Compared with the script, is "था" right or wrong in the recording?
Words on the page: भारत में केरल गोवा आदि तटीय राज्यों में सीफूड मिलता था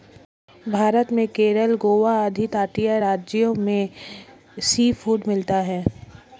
wrong